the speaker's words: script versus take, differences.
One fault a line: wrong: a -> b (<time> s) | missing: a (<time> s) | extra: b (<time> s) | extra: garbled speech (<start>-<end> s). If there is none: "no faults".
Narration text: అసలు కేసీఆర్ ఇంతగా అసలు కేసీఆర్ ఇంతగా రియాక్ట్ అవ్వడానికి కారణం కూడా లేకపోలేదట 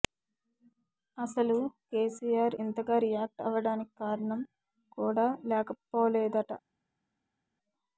missing: అసలు కేసీఆర్ ఇంతగా (3.0 s)